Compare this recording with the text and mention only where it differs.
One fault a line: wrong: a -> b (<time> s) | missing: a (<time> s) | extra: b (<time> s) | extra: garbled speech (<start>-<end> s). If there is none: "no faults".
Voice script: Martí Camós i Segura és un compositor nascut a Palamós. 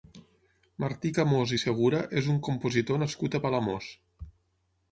no faults